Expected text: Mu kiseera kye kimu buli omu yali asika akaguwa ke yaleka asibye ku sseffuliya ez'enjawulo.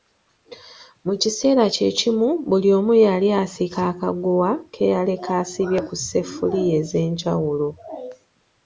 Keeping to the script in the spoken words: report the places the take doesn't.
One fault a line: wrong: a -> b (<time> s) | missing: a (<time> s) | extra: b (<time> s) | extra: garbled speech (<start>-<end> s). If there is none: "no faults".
no faults